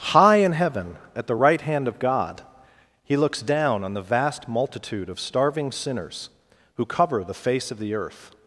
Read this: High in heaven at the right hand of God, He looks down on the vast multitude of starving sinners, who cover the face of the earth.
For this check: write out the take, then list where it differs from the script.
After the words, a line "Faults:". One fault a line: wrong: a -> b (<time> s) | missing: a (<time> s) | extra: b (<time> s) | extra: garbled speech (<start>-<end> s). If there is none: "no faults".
High in heaven at the right hand of God, He looks down on the vast multitude of starving sinners, who cover the face of the earth.
Faults:
no faults